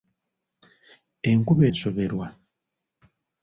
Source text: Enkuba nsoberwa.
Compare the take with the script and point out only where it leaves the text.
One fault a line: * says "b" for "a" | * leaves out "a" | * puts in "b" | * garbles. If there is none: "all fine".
all fine